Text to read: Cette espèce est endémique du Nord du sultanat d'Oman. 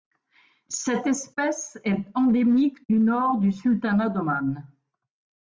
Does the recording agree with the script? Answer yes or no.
yes